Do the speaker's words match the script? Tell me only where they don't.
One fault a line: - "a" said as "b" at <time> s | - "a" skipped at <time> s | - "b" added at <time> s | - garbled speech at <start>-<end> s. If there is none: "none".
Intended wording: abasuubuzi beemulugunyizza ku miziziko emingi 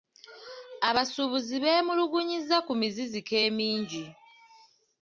none